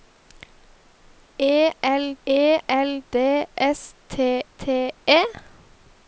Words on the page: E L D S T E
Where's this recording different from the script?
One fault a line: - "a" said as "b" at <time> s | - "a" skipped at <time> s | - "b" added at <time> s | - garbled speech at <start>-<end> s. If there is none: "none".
- "e L" added at 2.2 s
- "T" added at 4.6 s